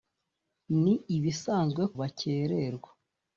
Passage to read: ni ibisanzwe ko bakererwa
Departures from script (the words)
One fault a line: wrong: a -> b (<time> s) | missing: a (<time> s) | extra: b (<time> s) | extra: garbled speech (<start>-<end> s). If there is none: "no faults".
missing: ko (1.8 s)